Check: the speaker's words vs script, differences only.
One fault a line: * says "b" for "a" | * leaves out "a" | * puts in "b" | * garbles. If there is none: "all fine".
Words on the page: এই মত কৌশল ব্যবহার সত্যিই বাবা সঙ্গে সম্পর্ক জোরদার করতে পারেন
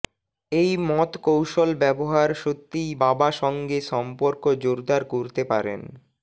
all fine